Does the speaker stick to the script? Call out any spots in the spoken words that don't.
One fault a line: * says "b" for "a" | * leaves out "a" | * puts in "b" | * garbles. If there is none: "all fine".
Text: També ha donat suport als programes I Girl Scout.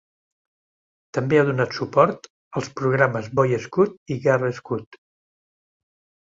* puts in "Boy Scout"